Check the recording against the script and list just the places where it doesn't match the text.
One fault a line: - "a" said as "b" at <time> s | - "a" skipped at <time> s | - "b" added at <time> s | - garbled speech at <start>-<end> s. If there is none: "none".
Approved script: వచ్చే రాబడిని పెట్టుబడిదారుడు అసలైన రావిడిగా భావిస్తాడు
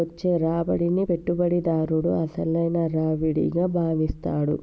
none